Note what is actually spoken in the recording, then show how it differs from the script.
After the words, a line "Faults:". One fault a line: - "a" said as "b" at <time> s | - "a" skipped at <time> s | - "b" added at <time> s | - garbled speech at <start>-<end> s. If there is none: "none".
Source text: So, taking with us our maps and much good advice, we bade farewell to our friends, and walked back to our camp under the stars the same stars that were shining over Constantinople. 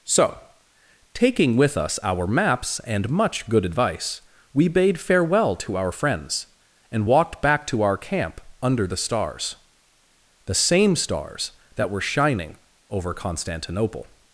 So, taking with us our maps and much good advice, we bade farewell to our friends, and walked back to our camp under the stars the same stars that were shining over Constantinople.
Faults:
none